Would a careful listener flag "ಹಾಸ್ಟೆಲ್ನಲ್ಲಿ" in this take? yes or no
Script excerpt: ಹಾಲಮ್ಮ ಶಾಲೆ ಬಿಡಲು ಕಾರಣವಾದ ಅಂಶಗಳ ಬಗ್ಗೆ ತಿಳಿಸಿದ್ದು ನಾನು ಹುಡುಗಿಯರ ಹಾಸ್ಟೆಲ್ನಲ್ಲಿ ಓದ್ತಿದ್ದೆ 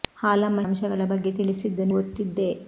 yes